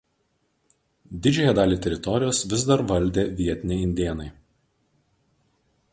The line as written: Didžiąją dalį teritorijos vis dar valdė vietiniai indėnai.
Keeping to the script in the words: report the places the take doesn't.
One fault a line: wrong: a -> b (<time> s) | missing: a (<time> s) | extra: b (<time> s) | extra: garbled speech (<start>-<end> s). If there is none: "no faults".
no faults